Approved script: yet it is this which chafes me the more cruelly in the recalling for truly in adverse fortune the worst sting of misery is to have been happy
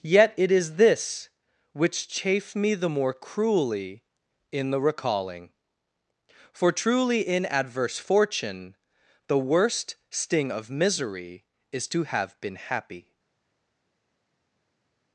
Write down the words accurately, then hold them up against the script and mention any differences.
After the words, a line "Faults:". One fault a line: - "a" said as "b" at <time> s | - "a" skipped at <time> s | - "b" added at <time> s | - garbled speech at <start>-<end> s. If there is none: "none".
yet it is this which chafe me the more cruelly in the recalling for truly in adverse fortune the worst sting of misery is to have been happy
Faults:
- "chafes" said as "chafe" at 2.1 s